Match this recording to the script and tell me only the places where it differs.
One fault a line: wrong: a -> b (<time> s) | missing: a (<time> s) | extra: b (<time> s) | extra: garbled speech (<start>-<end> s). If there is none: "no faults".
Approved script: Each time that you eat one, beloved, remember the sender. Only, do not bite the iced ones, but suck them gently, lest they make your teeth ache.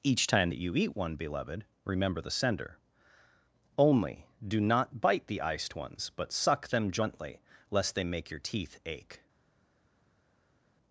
no faults